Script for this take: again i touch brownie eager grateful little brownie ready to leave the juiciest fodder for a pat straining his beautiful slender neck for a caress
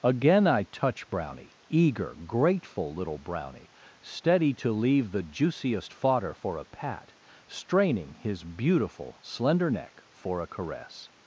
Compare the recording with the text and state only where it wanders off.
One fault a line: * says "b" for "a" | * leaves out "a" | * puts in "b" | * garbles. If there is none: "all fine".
* says "steady" for "ready"